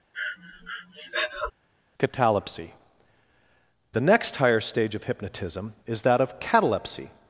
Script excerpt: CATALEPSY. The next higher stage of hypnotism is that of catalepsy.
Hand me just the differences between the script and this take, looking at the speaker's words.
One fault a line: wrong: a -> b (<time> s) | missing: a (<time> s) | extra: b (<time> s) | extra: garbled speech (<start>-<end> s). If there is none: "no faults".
no faults